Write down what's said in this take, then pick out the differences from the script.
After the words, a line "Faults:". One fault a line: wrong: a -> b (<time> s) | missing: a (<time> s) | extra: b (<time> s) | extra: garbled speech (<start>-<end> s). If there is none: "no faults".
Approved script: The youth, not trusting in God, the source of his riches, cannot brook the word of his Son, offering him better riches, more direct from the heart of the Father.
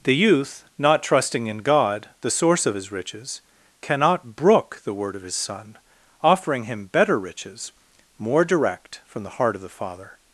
The youth, not trusting in God, the source of his riches, cannot brook the word of his Son, offering him better riches, more direct from the heart of the Father.
Faults:
no faults